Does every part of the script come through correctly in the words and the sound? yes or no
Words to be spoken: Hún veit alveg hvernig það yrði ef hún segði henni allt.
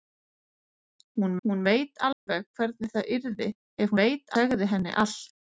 no